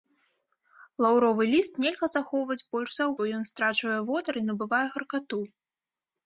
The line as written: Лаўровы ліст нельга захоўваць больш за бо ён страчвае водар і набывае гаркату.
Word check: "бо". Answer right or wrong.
right